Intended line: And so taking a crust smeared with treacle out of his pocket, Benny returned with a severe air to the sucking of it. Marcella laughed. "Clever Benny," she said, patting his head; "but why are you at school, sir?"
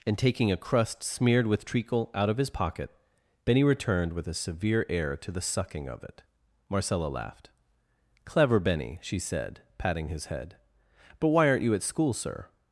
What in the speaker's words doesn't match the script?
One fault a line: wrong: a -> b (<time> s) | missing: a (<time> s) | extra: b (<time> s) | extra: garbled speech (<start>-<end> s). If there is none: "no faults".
missing: so (0.2 s)
wrong: are -> aren't (11.5 s)